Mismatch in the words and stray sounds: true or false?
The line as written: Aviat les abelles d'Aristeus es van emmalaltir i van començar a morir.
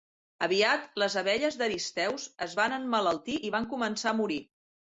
false